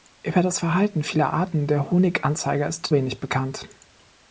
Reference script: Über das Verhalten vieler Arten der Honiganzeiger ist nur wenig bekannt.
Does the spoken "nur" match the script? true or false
false